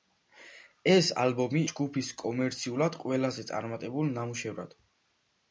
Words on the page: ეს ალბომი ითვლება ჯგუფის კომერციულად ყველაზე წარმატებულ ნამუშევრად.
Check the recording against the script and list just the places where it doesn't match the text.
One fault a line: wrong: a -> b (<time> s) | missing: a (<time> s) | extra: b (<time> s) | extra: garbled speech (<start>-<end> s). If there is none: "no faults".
missing: ითვლება (1.6 s)